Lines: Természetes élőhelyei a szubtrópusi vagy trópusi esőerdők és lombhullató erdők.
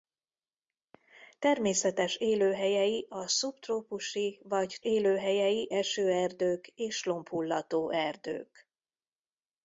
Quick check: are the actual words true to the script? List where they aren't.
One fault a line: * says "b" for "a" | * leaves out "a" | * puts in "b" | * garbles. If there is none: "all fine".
* says "élőhelyei" for "trópusi"